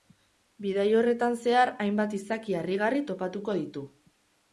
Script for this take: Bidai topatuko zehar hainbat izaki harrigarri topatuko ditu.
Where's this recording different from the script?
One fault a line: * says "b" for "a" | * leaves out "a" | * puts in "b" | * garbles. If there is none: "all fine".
* says "horretan" for "topatuko"